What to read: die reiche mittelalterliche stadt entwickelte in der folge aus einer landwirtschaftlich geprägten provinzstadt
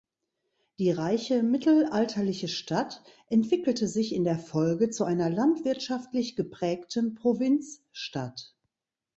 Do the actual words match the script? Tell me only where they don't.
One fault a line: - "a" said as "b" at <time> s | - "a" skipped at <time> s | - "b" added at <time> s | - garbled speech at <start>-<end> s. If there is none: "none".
- "sich" added at 3.9 s
- "aus" said as "zu" at 4.9 s